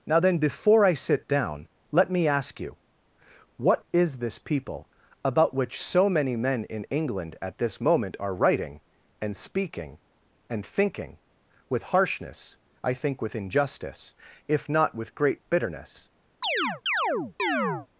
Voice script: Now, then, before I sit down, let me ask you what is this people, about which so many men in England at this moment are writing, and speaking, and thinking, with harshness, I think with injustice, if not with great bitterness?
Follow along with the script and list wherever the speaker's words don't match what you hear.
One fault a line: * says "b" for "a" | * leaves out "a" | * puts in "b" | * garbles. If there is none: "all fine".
all fine